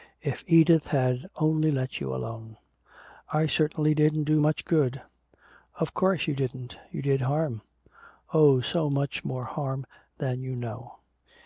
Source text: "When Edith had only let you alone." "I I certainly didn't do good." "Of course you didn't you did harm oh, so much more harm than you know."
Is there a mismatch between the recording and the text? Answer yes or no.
yes